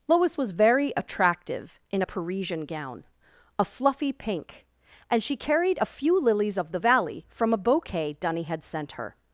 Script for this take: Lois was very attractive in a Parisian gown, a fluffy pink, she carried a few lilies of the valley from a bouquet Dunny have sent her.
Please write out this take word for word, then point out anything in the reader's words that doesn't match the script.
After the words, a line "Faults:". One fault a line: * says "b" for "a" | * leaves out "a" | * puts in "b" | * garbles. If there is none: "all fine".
Lois was very attractive in a Parisian gown, a fluffy pink, and she carried a few lilies of the valley from a bouquet Dunny had sent her.
Faults:
* puts in "and"
* says "had" for "have"